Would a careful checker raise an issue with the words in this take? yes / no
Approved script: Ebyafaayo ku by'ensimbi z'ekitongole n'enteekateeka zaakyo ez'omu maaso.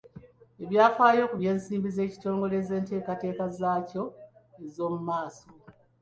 no